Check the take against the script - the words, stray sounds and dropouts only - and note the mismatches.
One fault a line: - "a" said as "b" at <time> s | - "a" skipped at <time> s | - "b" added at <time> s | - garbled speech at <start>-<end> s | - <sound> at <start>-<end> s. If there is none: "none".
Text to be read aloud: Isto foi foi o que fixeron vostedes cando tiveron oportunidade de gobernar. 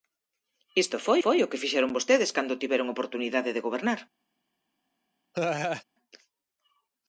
- laugh at 5.3-5.8 s